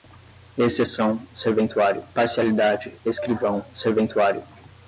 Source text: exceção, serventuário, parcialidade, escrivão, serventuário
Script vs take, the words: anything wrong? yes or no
no